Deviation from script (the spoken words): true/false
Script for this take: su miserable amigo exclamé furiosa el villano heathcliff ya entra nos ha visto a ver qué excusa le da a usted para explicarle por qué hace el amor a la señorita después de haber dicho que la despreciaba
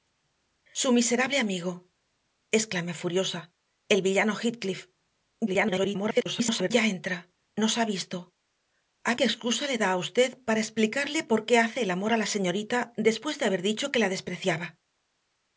true